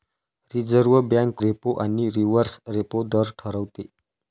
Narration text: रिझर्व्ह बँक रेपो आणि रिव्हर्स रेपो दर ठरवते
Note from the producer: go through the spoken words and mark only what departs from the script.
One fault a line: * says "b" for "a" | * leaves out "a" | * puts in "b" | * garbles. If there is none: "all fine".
all fine